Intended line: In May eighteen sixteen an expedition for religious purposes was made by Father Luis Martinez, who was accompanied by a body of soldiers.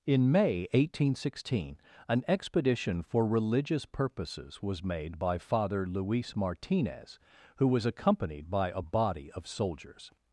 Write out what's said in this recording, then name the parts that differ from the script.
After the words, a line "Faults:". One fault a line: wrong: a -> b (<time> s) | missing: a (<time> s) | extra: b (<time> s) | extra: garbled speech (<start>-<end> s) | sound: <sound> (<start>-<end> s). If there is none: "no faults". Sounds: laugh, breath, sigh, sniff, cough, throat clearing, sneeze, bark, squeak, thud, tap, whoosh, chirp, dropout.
In May eighteen sixteen an expedition for religious purposes was made by Father Luis Martinez, who was accompanied by a body of soldiers.
Faults:
no faults